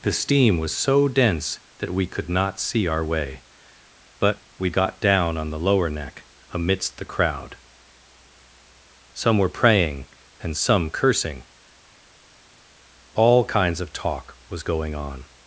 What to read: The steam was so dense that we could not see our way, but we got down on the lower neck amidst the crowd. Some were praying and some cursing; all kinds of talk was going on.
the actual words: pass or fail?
pass